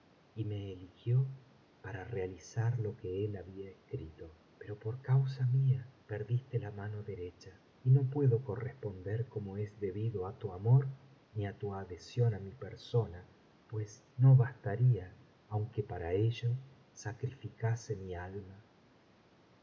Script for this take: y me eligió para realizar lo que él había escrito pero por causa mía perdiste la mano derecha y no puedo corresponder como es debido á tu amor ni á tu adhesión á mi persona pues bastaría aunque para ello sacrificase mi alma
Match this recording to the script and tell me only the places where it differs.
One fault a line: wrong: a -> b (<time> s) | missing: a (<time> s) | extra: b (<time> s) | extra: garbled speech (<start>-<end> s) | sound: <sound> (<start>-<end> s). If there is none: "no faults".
extra: no (14.2 s)